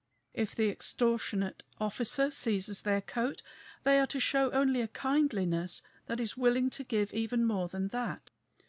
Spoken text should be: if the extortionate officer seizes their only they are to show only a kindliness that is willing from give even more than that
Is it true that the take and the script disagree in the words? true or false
true